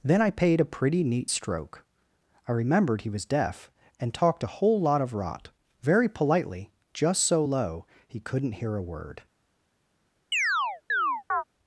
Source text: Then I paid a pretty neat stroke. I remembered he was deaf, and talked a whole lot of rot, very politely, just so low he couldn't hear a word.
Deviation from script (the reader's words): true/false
false